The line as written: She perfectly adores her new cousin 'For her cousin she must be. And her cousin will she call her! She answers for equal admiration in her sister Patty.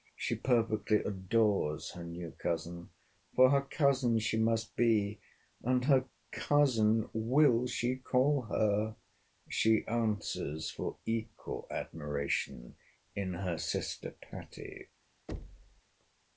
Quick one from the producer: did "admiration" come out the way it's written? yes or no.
yes